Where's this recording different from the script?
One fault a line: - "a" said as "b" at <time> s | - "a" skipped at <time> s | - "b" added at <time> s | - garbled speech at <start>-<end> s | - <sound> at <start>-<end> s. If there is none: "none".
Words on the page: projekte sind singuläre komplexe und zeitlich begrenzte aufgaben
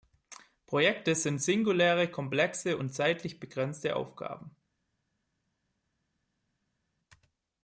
none